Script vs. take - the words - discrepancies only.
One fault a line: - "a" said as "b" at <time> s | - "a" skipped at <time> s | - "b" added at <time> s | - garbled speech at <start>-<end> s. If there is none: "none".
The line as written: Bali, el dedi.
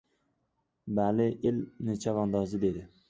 - "chavandozi" added at 2.1 s